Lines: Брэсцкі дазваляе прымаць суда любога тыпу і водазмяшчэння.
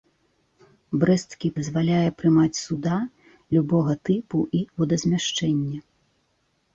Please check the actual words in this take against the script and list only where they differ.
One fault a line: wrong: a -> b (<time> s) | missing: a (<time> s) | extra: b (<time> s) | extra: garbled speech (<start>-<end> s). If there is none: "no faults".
no faults